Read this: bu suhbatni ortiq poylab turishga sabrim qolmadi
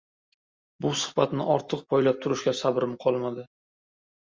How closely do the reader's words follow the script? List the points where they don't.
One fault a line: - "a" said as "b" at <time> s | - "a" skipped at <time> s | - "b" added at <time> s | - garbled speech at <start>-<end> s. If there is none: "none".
none